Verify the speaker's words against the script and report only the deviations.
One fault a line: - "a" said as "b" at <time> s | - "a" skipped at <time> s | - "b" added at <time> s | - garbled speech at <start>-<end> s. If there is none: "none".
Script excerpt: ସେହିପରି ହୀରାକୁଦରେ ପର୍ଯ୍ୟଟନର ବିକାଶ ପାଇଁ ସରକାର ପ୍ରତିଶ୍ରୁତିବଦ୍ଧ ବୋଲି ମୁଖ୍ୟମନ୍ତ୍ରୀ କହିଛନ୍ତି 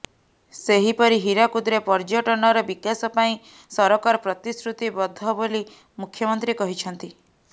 none